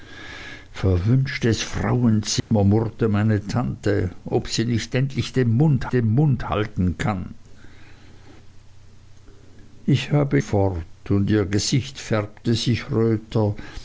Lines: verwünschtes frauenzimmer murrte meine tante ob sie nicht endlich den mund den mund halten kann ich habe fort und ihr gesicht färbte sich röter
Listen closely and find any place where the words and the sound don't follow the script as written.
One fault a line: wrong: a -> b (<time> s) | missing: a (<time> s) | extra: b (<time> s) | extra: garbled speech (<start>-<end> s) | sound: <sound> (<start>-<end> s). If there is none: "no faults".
sound: dropout (2.4-2.5 s)